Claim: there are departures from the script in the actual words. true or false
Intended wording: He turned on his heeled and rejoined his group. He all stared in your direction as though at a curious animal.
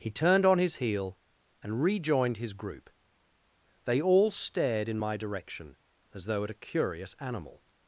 true